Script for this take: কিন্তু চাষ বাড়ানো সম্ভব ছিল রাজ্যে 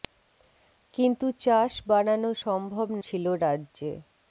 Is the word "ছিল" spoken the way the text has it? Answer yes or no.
yes